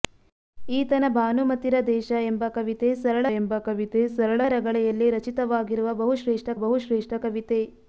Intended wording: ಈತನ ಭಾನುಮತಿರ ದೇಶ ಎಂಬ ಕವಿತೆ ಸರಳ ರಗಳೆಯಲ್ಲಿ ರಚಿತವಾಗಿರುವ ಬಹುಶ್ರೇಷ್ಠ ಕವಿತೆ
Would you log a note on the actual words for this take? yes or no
yes